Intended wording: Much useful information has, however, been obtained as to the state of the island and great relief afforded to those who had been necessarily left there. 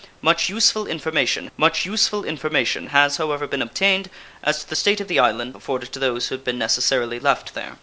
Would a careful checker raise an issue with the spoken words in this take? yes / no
yes